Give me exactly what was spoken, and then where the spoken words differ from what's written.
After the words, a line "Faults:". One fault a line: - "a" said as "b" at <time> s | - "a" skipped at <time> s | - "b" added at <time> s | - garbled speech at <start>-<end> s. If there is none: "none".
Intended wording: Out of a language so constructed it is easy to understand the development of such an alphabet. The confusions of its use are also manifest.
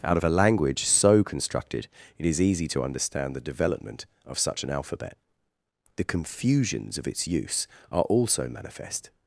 Out of a language so constructed it is easy to understand the development of such an alphabet. The confusions of its use are also manifest.
Faults:
none